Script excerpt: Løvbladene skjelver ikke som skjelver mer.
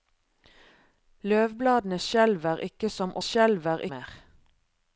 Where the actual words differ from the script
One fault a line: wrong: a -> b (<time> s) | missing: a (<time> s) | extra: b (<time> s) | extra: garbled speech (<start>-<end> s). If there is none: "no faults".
no faults